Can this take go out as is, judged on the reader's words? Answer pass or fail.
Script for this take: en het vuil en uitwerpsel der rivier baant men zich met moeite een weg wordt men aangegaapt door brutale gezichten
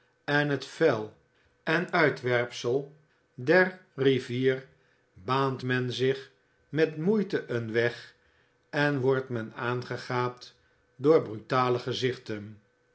fail